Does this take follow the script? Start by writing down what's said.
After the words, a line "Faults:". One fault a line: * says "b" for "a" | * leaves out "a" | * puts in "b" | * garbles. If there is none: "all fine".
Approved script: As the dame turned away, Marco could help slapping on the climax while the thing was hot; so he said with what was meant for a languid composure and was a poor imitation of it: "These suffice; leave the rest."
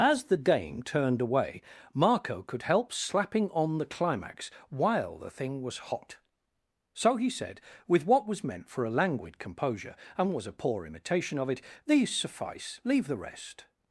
As the dame turned away, Marco could help slapping on the climax while the thing was hot; so he said with what was meant for a languid composure and was a poor imitation of it: "These suffice; leave the rest."
Faults:
all fine